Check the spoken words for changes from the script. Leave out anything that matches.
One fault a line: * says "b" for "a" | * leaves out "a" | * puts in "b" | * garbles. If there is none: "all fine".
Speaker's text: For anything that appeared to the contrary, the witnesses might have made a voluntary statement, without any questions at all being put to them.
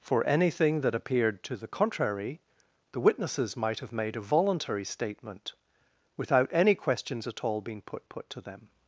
* puts in "put"